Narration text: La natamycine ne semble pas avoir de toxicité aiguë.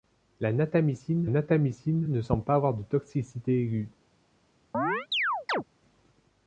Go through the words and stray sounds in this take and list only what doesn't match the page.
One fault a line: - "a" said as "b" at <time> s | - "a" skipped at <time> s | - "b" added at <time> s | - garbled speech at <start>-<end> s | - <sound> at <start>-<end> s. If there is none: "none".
- "natamycine" added at 1.3 s
- chirp at 4.7-5.6 s